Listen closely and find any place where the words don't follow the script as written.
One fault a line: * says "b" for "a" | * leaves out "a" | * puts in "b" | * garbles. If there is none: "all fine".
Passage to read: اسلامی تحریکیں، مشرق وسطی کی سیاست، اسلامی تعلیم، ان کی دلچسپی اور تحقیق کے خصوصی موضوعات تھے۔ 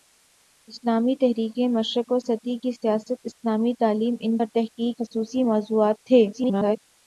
* leaves out "کی دلچسپی"
* leaves out "کے"
* garbles